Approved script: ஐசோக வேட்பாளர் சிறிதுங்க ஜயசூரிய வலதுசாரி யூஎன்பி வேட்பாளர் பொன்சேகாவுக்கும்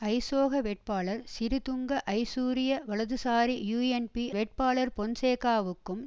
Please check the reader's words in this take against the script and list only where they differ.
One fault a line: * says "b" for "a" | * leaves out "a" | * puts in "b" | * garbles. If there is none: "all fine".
all fine